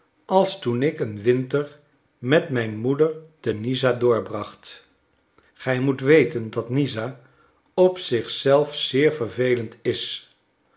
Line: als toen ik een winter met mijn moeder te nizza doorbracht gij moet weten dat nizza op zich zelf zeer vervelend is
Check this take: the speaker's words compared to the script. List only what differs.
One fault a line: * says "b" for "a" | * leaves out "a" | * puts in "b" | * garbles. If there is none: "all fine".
all fine